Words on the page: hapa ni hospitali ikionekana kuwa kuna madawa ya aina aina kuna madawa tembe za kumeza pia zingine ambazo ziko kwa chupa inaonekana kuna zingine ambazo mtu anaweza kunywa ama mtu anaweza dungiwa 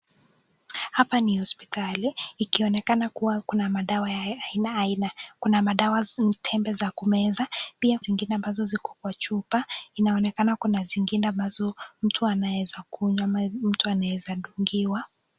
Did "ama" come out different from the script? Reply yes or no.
no